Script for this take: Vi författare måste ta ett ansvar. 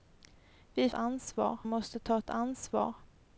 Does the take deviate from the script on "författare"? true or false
true